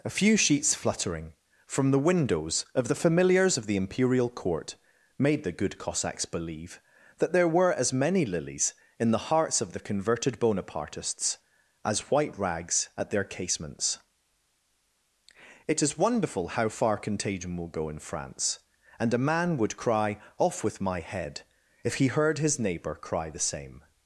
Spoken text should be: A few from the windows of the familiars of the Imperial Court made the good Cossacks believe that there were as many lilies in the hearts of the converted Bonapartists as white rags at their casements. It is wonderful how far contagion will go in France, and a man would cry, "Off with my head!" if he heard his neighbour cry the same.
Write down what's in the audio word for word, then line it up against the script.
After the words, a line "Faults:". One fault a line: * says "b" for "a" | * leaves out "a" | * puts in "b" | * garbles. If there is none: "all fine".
A few sheets fluttering from the windows of the familiars of the Imperial Court made the good Cossacks believe that there were as many lilies in the hearts of the converted Bonapartists as white rags at their casements. It is wonderful how far contagion will go in France, and a man would cry, "Off with my head!" if he heard his neighbour cry the same.
Faults:
* puts in "sheets fluttering"